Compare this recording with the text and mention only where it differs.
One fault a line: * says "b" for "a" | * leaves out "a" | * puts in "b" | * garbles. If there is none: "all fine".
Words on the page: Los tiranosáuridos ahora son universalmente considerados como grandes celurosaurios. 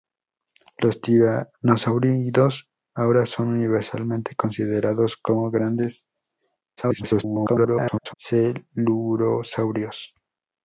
* garbles